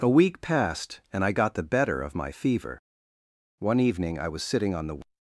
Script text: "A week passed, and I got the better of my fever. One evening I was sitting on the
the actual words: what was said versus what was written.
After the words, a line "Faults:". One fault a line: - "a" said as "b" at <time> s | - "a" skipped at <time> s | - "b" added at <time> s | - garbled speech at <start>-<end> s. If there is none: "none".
"A week passed, and I got the better of my fever. One evening I was sitting on the
Faults:
none